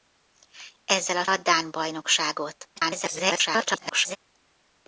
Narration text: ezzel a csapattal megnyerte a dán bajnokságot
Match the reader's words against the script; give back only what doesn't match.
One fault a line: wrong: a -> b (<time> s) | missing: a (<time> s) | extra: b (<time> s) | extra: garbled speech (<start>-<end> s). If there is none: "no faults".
missing: csapattal megnyerte (1.2 s)
extra: garbled speech (2.8-4.2 s)